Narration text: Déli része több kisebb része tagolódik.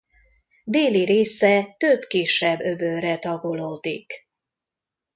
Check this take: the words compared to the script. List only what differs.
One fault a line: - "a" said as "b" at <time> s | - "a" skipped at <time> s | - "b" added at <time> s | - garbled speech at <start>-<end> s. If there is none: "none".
- "része" said as "öbölre" at 2.6 s